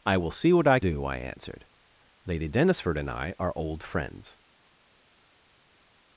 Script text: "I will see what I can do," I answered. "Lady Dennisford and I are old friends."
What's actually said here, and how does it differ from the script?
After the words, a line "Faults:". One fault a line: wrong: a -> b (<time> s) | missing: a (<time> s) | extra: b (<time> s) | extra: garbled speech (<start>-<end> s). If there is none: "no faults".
"I will see what I do," I answered. "Lady Dennisford and I are old friends."
Faults:
missing: can (0.8 s)